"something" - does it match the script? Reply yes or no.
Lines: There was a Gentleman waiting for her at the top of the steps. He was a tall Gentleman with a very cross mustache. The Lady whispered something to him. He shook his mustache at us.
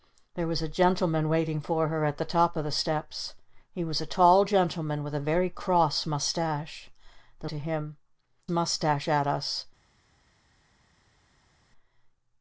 no